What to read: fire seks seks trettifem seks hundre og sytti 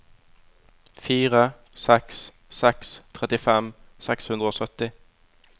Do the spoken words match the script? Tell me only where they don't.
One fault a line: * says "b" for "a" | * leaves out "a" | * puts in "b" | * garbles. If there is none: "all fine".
all fine